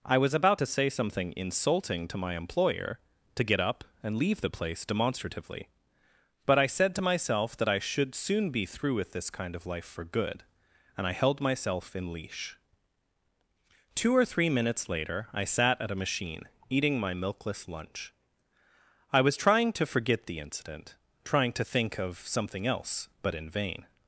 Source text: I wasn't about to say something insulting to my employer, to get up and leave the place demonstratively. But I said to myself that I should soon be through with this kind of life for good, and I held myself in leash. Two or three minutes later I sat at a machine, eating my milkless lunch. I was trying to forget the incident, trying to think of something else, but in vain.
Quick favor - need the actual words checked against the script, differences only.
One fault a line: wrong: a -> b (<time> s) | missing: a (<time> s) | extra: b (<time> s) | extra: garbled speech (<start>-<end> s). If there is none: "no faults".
wrong: wasn't -> was (0.2 s)